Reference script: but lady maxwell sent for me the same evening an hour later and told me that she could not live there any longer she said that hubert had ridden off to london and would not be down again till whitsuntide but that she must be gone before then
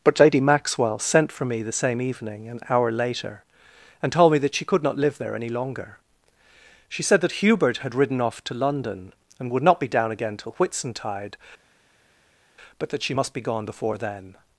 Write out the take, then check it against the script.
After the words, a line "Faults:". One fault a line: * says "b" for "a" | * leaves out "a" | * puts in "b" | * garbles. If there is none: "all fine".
but lady maxwell sent for me the same evening an hour later and told me that she could not live there any longer she said that hubert had ridden off to london and would not be down again till whitsuntide but that she must be gone before then
Faults:
all fine